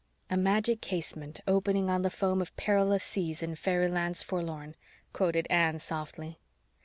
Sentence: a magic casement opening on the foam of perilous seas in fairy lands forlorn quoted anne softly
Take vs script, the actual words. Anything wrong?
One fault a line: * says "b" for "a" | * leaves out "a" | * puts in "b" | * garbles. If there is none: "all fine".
all fine